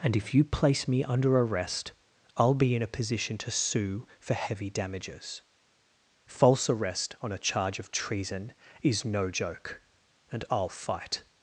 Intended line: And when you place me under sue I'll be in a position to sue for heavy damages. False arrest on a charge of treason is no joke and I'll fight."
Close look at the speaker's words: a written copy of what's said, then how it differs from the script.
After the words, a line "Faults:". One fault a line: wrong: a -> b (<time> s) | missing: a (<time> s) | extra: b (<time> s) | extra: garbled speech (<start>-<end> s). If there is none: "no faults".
And if you place me under arrest I'll be in a position to sue for heavy damages. False arrest on a charge of treason is no joke and I'll fight."
Faults:
wrong: when -> if (0.1 s)
wrong: sue -> arrest (1.4 s)